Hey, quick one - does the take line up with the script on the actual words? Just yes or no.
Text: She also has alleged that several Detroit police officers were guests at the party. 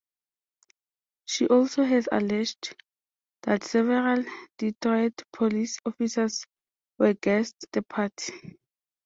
no